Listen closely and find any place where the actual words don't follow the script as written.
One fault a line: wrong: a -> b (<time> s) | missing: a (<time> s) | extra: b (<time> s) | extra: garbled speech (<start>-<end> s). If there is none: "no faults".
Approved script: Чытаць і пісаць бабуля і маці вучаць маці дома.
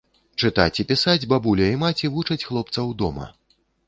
wrong: маці -> хлопцаў (2.5 s)